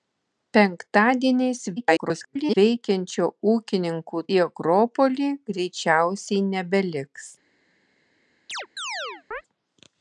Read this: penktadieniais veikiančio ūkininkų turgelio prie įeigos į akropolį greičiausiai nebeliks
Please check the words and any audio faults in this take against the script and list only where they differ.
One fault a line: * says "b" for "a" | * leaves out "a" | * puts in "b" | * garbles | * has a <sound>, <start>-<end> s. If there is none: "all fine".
* garbles
* leaves out "turgelio prie įeigos"
* has a chirp, 8.5-9.4 s